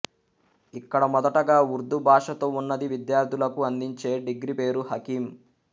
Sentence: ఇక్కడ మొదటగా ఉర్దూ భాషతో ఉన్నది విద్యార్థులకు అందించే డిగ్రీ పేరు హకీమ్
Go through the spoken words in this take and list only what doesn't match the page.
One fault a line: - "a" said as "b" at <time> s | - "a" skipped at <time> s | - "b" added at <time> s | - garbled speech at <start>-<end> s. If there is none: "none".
none